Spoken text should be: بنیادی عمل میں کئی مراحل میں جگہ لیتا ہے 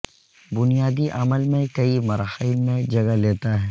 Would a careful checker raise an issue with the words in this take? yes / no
no